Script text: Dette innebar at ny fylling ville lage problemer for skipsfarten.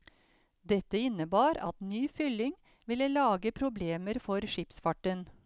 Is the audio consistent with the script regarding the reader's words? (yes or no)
yes